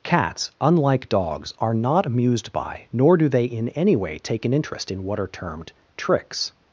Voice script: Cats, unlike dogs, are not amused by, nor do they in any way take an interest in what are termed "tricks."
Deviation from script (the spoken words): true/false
false